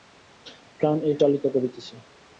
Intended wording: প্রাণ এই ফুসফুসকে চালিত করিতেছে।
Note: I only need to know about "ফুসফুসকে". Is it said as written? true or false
false